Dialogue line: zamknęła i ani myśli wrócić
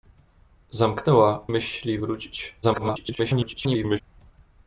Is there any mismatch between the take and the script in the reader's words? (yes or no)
yes